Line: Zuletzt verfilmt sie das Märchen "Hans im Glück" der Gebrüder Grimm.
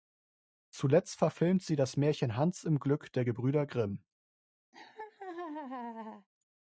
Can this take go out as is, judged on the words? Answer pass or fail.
pass